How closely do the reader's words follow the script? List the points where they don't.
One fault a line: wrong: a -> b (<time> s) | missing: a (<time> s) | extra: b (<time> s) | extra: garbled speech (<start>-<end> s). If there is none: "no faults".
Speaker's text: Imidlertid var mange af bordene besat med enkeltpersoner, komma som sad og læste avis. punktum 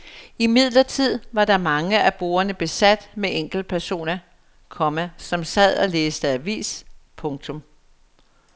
no faults